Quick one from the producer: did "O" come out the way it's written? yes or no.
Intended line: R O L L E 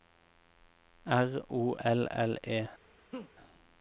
yes